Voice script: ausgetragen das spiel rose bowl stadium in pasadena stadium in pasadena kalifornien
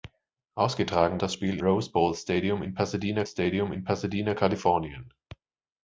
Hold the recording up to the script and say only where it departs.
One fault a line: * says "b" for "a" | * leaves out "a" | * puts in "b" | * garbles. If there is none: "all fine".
all fine